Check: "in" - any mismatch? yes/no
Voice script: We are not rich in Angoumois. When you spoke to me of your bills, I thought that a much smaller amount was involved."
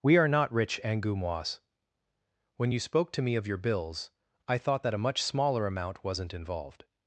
yes